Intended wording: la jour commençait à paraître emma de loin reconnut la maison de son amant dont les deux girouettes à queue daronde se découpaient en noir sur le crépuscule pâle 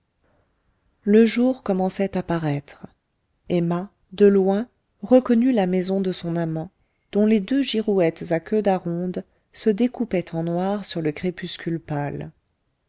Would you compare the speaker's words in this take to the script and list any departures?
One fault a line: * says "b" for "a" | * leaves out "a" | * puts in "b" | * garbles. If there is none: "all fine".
* says "le" for "la"